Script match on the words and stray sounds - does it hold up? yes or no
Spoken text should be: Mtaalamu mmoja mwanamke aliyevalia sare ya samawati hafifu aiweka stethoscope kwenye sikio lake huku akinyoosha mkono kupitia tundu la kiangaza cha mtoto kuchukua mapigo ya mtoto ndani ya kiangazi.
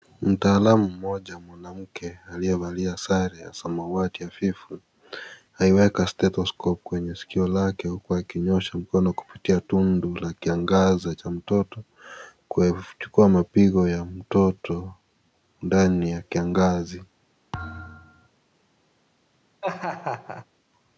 no